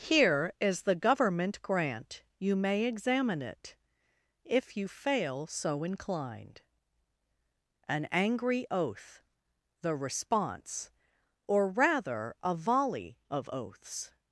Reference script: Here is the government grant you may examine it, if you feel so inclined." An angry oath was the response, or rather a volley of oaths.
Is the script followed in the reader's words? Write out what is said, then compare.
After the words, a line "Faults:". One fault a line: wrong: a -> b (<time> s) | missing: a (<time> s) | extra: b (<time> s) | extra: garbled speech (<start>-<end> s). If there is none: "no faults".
Here is the government grant you may examine it, if you fail so inclined." An angry oath the response, or rather a volley of oaths.
Faults:
wrong: feel -> fail (4.9 s)
missing: was (9.2 s)